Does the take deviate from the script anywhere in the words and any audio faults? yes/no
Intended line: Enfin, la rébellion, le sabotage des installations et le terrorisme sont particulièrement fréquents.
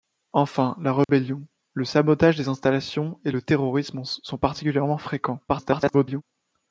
yes